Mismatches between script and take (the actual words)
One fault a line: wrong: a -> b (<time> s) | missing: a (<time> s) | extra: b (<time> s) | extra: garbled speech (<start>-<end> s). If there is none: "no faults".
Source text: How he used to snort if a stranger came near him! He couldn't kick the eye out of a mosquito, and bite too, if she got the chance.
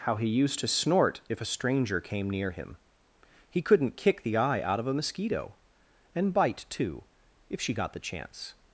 no faults